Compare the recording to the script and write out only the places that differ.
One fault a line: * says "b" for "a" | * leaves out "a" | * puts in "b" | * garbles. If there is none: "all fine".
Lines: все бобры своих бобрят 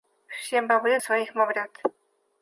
all fine